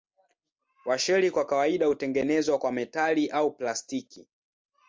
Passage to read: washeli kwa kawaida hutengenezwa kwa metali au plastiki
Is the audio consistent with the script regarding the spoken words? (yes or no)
yes